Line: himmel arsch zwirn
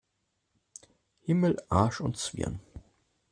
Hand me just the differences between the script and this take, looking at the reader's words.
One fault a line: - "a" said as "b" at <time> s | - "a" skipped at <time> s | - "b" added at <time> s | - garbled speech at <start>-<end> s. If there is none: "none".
- "und" added at 2.0 s